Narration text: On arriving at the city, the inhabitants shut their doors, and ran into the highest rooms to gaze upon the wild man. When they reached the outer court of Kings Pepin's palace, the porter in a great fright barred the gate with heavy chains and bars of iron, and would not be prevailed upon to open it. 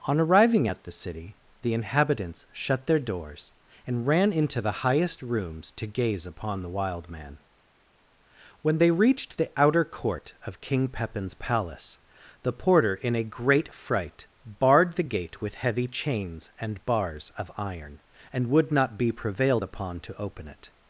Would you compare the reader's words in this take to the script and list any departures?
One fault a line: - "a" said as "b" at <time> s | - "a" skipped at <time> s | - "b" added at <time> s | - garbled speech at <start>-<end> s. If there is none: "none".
- "Kings" said as "King" at 10.6 s